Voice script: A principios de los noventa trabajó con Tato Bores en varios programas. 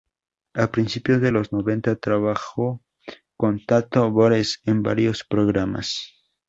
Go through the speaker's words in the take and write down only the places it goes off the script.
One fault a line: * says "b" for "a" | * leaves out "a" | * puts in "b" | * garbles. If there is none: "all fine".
all fine